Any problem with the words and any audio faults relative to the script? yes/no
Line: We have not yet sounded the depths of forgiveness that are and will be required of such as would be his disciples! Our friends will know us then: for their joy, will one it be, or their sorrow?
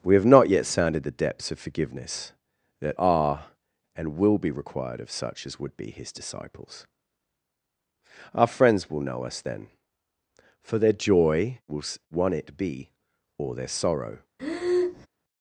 yes